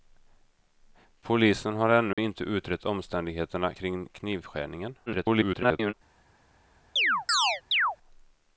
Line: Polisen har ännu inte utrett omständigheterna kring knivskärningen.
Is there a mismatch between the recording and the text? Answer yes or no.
yes